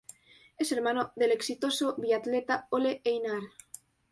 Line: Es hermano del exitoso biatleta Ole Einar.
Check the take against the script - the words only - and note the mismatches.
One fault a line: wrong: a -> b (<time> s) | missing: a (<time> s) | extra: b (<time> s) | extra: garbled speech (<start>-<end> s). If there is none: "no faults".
no faults